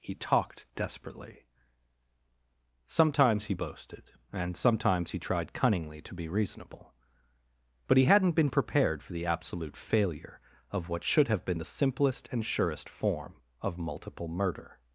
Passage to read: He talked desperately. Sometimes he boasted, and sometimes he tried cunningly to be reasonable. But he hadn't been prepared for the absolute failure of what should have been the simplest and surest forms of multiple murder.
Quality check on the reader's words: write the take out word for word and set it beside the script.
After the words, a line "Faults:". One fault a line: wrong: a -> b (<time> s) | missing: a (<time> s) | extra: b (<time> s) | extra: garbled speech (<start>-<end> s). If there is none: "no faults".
He talked desperately. Sometimes he boasted, and sometimes he tried cunningly to be reasonable. But he hadn't been prepared for the absolute failure of what should have been the simplest and surest form of multiple murder.
Faults:
wrong: forms -> form (12.9 s)